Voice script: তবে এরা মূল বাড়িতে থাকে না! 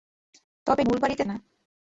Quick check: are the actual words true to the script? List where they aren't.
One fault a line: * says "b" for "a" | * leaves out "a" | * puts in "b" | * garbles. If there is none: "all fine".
* leaves out "এরা"
* leaves out "থাকে"